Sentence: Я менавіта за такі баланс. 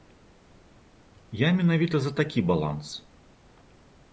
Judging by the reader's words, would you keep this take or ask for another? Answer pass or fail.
pass